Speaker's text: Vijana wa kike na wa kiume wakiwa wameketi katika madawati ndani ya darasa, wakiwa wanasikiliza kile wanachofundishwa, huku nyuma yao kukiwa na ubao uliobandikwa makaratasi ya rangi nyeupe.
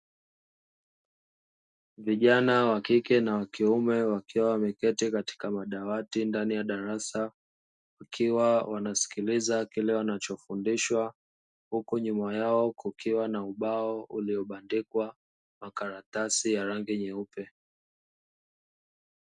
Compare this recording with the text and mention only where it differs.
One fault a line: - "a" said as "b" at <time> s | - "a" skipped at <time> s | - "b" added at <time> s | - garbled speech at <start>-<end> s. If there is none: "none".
none